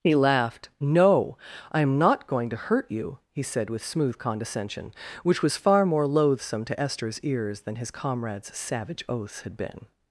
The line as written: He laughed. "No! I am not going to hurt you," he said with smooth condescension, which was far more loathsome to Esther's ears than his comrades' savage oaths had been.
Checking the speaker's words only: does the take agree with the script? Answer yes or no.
yes